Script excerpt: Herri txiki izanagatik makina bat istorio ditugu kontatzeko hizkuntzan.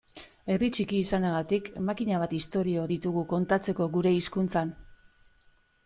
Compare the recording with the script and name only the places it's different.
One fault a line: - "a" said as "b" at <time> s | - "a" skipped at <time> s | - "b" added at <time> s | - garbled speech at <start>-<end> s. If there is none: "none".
- "gure" added at 4.0 s